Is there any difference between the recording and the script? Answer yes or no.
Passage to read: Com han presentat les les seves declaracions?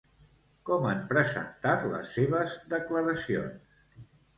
yes